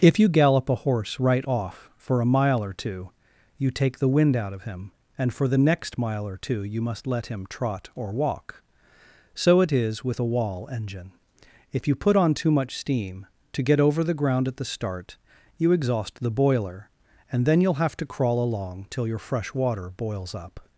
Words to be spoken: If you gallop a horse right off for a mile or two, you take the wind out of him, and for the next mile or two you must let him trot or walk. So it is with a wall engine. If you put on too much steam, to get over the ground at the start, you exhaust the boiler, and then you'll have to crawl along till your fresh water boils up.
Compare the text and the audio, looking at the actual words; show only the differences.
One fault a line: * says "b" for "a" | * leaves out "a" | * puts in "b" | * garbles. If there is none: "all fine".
all fine